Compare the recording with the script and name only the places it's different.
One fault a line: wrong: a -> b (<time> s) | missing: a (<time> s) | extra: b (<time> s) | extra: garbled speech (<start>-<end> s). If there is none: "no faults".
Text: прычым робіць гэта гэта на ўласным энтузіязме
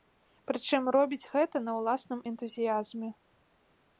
missing: гэта (1.6 s)